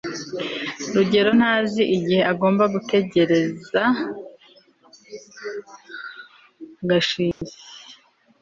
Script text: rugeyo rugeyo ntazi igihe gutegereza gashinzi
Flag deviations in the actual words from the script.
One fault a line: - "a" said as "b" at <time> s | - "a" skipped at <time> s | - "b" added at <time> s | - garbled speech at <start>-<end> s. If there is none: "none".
- "rugeyo" skipped at 1.3 s
- "agomba" added at 2.3 s